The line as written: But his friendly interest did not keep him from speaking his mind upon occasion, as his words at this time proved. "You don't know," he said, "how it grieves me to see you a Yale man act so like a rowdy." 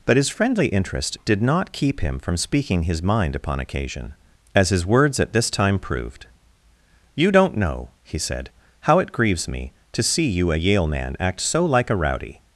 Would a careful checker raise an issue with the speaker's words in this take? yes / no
no